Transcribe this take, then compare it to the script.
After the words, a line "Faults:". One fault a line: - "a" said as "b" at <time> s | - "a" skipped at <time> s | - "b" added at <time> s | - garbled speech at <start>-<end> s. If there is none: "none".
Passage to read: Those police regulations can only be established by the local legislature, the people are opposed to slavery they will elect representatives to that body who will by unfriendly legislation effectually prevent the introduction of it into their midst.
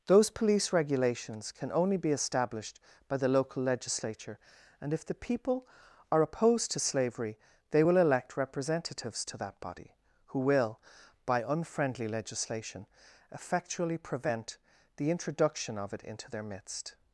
Those police regulations can only be established by the local legislature, and if the people are opposed to slavery they will elect representatives to that body who will by unfriendly legislation effectually prevent the introduction of it into their midst.
Faults:
- "and if" added at 4.8 s